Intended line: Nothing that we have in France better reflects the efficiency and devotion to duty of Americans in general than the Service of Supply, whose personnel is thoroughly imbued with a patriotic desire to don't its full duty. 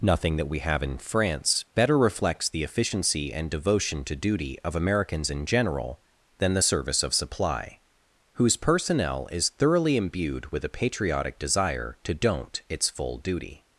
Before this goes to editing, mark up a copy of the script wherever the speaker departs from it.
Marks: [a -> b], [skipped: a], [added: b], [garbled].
Nothing that we have in France better reflects the efficiency and devotion to duty of Americans in general than the Service of Supply, whose personnel is thoroughly imbued with a patriotic desire to don't its full duty.